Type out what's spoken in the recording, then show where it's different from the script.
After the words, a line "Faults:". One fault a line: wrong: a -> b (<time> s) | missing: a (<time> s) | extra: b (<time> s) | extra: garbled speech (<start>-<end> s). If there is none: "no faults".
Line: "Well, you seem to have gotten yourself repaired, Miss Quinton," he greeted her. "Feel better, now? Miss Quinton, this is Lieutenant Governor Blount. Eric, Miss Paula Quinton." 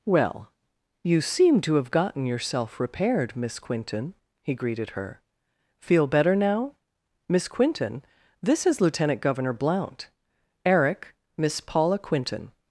"Well, you seem to have gotten yourself repaired, Miss Quinton," he greeted her. "Feel better, now? Miss Quinton, this is Lieutenant Governor Blount. Eric, Miss Paula Quinton."
Faults:
no faults